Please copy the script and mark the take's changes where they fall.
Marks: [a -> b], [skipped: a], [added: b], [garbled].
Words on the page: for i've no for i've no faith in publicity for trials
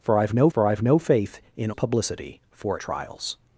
for i've no for i've no faith in publicity for trials